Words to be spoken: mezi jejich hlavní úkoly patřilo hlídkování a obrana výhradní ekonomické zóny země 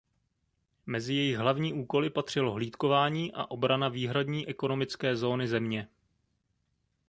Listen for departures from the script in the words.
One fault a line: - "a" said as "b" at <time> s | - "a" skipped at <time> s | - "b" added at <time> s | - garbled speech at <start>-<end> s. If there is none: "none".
none